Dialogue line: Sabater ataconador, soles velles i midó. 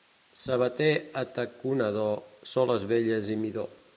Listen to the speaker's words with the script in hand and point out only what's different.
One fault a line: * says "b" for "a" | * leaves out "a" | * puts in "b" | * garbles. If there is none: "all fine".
all fine